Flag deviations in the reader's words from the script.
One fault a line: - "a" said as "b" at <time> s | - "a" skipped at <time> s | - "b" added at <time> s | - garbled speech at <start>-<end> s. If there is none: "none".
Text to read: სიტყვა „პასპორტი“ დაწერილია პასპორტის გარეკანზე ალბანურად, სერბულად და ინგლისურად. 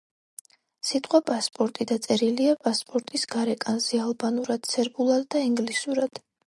none